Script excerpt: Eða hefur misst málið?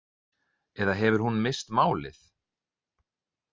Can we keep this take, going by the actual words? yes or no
no